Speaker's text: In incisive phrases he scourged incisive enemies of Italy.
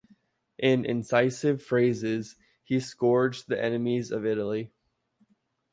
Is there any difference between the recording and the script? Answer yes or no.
yes